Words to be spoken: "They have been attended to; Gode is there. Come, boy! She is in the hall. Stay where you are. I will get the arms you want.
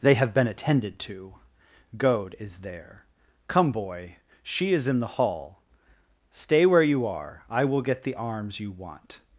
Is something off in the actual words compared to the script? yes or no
no